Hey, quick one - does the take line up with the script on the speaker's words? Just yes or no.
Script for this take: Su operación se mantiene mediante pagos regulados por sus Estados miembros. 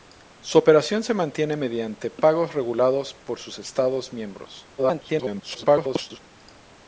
no